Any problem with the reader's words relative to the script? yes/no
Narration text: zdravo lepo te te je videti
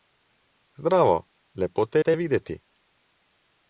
no